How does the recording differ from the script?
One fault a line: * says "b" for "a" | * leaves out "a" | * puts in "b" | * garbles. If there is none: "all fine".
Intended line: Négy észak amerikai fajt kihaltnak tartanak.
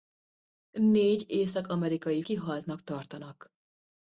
* leaves out "fajt"